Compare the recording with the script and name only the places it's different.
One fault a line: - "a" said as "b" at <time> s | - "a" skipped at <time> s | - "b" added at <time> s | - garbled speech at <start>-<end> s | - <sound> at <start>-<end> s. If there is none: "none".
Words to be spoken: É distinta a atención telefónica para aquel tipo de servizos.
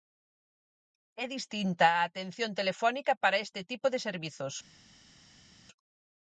- "aquel" said as "este" at 3.5 s